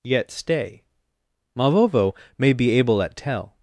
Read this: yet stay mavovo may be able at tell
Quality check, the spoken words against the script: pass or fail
pass